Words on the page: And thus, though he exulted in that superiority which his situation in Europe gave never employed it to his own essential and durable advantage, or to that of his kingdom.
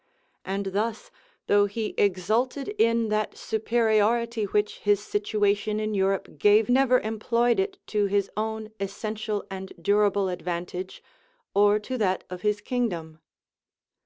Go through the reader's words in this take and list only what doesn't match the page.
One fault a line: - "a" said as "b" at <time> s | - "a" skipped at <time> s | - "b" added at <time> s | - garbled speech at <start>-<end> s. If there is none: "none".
none